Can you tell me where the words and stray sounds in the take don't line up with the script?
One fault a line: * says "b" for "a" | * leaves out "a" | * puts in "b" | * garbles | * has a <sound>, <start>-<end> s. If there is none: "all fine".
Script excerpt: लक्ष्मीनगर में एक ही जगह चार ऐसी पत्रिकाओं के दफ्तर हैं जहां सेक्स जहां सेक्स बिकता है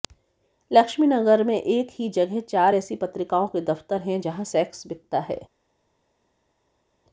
* leaves out "जहां सेक्स"